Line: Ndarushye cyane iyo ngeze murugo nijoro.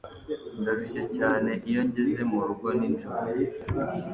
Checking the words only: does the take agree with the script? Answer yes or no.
yes